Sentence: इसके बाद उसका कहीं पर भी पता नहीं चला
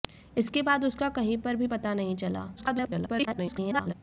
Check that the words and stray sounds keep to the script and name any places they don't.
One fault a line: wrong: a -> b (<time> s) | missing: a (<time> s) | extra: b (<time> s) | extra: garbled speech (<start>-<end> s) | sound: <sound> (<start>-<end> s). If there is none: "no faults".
extra: garbled speech (2.6-3.9 s)